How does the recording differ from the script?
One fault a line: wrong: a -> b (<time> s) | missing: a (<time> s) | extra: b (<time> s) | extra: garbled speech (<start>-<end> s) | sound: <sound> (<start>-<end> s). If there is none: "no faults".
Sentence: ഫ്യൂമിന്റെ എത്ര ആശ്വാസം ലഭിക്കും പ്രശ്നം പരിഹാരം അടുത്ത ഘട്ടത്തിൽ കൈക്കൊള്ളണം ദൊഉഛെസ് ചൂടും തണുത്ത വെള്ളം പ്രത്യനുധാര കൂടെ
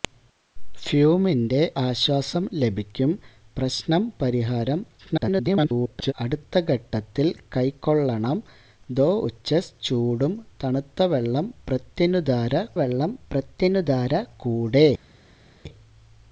missing: എത്ര (1.6 s)
extra: garbled speech (5.0-6.1 s)
extra: വെള്ളം പ്രത്യനുധാര (12.8 s)